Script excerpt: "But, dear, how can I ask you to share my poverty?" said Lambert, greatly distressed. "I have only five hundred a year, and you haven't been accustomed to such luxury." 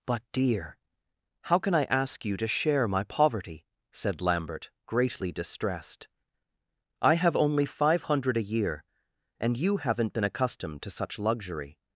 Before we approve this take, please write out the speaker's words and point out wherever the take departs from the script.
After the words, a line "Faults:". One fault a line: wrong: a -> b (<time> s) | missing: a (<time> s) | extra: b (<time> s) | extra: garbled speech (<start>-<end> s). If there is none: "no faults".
"But, dear, how can I ask you to share my poverty?" said Lambert, greatly distressed. "I have only five hundred a year, and you haven't been accustomed to such luxury."
Faults:
no faults